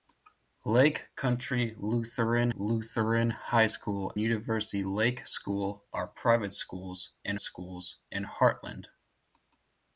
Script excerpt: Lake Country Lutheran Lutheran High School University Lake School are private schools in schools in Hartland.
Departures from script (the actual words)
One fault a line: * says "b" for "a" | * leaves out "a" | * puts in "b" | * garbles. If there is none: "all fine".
all fine